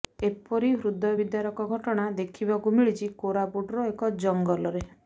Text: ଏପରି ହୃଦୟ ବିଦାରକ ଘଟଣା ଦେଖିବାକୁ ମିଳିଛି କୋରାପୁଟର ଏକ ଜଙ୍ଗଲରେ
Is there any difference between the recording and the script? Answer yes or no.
no